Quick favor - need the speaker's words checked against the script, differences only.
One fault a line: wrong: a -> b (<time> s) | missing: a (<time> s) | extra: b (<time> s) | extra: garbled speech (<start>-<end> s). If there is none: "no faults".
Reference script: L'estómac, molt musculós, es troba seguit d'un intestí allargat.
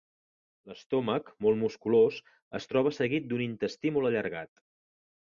extra: molt (4.0 s)